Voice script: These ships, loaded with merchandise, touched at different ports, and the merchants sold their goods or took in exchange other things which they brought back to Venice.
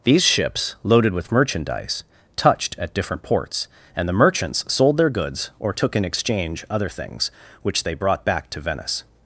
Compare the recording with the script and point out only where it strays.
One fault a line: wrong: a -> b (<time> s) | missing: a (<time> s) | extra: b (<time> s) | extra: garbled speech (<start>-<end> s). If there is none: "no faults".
no faults